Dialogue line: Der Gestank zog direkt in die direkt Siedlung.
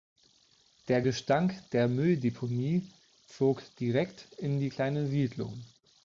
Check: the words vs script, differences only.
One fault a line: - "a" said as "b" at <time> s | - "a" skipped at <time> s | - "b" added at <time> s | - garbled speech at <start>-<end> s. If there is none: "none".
- "der Mülldeponie" added at 1.7 s
- "direkt" said as "kleine" at 4.7 s